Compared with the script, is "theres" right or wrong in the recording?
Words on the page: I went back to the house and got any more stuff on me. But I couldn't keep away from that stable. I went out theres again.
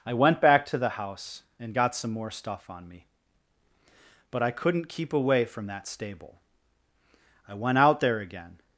wrong